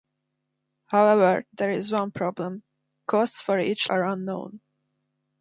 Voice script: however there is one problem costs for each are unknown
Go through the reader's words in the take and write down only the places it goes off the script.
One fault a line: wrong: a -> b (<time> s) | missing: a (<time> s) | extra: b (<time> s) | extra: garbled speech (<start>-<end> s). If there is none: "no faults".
no faults